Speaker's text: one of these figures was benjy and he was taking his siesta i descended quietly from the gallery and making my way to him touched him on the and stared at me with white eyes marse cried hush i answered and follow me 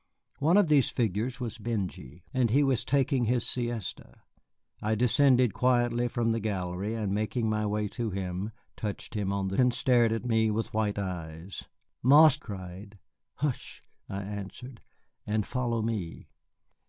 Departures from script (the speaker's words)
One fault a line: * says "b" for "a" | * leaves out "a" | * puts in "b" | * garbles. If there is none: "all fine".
all fine